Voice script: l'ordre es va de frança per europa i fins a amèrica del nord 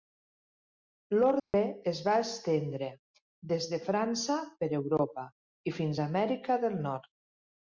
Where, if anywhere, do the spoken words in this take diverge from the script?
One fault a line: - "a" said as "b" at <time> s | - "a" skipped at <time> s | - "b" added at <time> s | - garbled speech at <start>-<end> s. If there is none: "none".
- "estendre des" added at 2.2 s